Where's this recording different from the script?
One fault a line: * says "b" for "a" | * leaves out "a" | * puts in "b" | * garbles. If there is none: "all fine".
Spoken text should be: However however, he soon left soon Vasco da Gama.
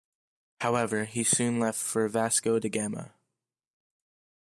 * leaves out "however"
* says "for" for "soon"